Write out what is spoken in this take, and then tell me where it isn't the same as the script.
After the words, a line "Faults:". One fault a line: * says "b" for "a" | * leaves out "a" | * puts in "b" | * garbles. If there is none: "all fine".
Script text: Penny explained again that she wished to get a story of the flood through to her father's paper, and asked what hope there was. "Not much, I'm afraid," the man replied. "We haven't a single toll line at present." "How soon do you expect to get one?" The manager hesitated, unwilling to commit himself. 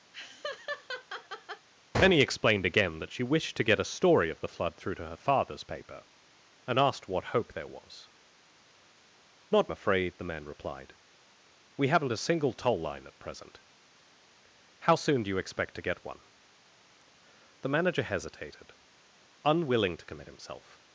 Penny explained again that she wished to get a story of the flood through to her father's paper, and asked what hope there was. "Not afraid," the man replied. "We haven't a single toll line at present." "How soon do you expect to get one?" The manager hesitated, unwilling to commit himself.
Faults:
* leaves out "much I'm"